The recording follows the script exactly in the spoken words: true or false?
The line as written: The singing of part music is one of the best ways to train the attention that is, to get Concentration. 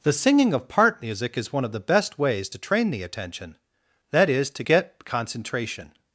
true